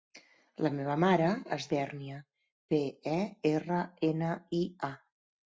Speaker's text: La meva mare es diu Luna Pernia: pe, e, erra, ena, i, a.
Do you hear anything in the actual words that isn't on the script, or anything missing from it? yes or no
yes